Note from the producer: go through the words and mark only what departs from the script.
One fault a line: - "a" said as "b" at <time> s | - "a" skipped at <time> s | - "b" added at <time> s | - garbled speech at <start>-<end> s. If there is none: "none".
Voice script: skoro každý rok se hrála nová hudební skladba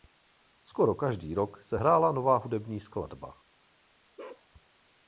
none